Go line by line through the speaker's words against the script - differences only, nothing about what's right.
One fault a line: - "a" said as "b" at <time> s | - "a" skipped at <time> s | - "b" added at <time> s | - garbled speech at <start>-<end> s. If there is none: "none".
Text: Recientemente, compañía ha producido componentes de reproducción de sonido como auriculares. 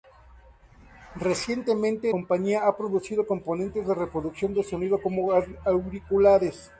none